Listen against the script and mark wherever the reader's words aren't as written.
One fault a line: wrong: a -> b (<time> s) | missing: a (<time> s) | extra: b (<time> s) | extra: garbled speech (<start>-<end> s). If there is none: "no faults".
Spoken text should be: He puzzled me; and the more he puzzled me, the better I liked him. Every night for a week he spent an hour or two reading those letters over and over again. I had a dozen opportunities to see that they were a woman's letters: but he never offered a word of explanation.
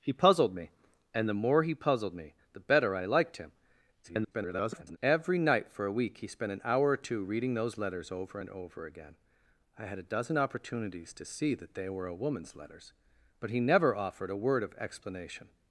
extra: garbled speech (4.0-5.0 s)